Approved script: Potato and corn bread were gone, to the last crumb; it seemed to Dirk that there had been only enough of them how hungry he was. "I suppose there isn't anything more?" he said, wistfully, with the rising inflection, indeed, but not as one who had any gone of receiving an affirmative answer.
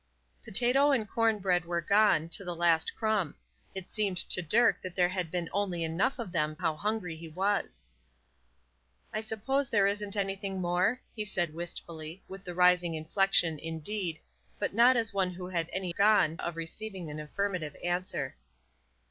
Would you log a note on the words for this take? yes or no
no